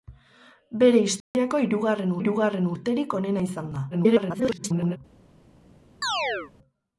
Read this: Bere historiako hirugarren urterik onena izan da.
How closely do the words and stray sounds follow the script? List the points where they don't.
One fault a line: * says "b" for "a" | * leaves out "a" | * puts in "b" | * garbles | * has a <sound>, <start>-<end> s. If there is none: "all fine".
* has a dropout, 1.2-1.3 s
* puts in "hirugarren"
* garbles
* has a chirp, 6.0-6.5 s